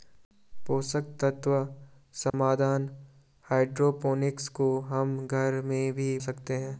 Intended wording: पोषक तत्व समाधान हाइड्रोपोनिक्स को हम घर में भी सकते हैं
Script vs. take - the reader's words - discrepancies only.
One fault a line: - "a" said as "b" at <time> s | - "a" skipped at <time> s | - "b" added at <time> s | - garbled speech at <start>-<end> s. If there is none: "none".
none